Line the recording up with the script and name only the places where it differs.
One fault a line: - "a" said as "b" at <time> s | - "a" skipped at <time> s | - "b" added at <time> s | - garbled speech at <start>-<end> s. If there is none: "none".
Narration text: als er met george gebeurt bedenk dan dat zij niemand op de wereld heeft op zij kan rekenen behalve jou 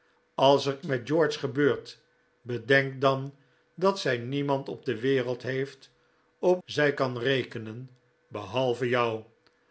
none